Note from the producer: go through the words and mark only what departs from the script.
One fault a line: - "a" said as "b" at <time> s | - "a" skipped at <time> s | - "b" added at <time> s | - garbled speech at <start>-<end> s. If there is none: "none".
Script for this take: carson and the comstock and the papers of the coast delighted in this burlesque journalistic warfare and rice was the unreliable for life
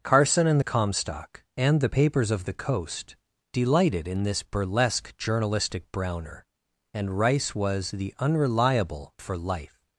- "warfare" said as "browner" at 5.9 s